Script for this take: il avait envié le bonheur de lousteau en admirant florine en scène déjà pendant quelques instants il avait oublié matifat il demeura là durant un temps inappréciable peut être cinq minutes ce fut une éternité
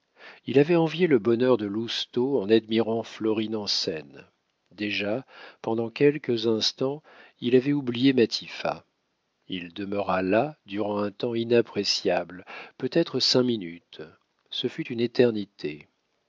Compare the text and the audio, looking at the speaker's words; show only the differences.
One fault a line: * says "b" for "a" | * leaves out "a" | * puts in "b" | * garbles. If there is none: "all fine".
all fine